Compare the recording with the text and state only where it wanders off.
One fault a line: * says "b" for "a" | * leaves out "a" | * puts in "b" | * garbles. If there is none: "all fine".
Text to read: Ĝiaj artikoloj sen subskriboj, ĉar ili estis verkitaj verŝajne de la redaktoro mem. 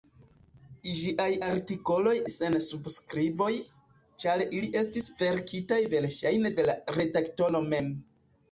all fine